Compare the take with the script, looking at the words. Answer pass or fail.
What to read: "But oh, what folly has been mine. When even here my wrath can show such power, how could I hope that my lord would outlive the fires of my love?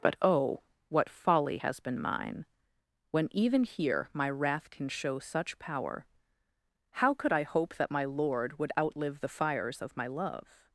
pass